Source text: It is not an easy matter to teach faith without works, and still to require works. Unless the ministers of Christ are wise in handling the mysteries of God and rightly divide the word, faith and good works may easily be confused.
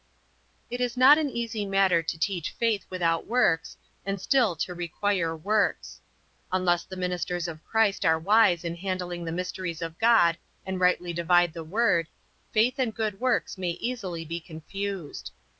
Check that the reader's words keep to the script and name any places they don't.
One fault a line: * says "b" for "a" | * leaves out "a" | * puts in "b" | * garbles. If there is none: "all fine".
all fine